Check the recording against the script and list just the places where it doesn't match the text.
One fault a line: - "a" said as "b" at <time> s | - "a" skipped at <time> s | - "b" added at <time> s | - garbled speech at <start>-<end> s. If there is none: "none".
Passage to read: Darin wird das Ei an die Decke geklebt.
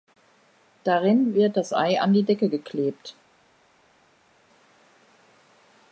none